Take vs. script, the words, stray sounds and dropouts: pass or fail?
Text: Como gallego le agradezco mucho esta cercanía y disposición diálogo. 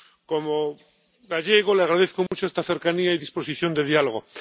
fail